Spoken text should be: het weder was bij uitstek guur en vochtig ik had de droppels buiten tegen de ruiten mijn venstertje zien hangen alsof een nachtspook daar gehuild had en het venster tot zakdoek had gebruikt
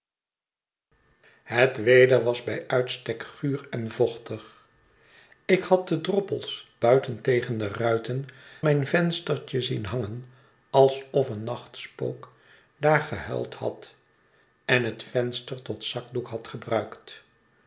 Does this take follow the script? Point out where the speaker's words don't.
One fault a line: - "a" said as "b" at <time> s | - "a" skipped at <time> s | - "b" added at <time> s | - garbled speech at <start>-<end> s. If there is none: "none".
none